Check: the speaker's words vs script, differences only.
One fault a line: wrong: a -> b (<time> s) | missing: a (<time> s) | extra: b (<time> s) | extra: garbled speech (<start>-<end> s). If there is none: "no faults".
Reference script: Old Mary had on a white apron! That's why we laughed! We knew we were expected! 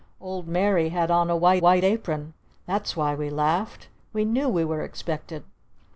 extra: white (1.6 s)